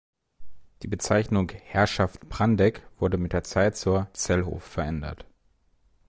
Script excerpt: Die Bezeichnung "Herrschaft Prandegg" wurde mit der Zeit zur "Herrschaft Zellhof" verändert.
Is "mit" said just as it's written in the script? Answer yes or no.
yes